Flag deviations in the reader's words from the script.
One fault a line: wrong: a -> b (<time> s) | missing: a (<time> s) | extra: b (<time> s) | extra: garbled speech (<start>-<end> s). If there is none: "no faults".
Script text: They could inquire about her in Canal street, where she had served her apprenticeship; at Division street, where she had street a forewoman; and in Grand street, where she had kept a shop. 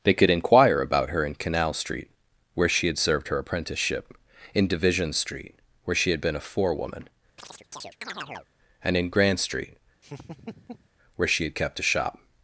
wrong: at -> in (4.5 s)
wrong: street -> been (6.2 s)